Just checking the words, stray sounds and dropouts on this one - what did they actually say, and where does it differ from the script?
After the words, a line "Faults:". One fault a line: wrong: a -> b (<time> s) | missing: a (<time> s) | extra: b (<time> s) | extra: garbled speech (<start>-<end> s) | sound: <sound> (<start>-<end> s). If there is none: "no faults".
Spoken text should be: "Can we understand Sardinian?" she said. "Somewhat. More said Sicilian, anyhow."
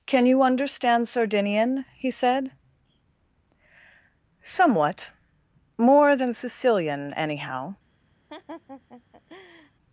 "Can you understand Sardinian?" he said. "Somewhat. More than Sicilian, anyhow."
Faults:
wrong: we -> you (0.2 s)
wrong: she -> he (1.9 s)
wrong: said -> than (6.2 s)
sound: laugh (8.3-9.7 s)